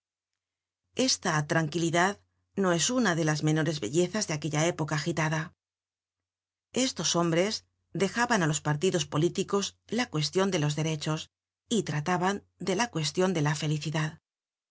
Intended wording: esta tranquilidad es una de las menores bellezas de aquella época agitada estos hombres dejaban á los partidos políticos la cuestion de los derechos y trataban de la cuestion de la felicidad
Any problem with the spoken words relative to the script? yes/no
yes